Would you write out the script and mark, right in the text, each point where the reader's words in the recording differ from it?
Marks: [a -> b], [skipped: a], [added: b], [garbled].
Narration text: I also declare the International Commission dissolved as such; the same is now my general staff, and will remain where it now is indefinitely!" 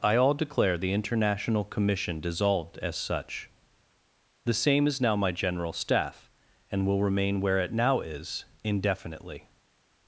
I [also -> all] declare the International Commission dissolved as such; the same is now my general staff, and will remain where it now is indefinitely!"